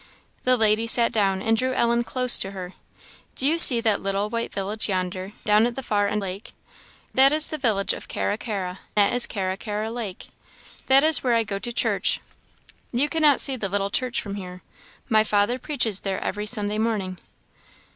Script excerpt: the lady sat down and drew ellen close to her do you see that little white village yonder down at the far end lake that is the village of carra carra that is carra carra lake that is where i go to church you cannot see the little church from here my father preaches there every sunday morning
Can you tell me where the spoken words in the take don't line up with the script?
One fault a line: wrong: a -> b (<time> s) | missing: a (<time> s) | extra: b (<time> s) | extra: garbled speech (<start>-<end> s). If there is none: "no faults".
no faults